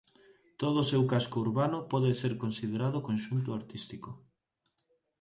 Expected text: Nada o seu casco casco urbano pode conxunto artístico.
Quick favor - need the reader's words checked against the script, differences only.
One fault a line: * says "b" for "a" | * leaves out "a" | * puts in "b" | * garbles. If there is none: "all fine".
* says "Todo" for "Nada"
* leaves out "casco"
* puts in "ser considerado"